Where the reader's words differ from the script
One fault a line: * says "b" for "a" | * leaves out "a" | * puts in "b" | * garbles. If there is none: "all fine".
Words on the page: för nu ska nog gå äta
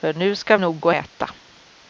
all fine